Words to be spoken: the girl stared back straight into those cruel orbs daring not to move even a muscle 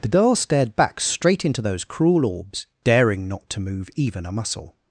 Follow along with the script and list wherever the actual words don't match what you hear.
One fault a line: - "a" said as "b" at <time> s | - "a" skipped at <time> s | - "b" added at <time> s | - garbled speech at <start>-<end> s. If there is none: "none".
none